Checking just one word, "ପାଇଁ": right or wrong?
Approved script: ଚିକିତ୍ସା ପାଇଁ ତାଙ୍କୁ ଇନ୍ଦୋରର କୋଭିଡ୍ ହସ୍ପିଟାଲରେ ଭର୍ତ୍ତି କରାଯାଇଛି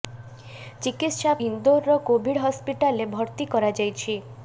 wrong